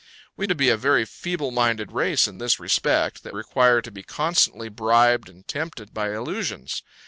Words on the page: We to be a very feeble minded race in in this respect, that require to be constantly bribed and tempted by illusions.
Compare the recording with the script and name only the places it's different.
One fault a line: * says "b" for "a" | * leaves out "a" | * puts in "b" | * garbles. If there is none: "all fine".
all fine